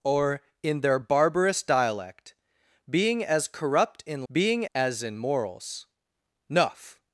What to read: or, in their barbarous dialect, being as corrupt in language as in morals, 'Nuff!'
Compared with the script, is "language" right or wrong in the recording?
wrong